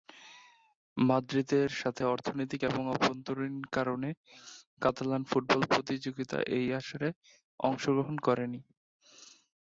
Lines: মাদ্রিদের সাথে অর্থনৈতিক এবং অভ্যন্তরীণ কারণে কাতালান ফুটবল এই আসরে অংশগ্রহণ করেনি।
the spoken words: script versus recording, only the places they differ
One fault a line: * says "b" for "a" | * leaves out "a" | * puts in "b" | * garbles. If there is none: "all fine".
* puts in "প্রতিযোগিতা"